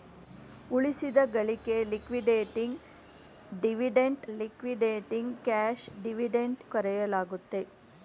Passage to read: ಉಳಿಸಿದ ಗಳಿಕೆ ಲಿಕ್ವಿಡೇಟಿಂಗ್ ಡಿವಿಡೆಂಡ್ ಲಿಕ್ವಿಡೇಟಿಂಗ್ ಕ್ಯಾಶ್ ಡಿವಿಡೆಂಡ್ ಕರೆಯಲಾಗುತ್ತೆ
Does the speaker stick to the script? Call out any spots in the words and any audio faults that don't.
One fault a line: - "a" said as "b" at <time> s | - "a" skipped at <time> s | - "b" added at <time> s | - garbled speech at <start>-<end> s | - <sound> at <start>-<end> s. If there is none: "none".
none